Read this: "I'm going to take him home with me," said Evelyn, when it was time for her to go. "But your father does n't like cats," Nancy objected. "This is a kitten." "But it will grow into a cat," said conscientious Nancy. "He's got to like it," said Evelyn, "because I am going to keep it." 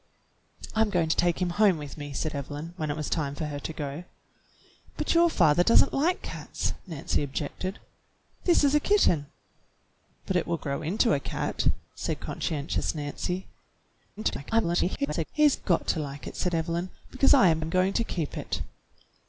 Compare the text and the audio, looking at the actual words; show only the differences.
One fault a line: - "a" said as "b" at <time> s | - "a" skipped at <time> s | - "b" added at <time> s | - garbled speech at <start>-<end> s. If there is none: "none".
- garbled speech at 14.2-15.3 s
- "am" added at 17.6 s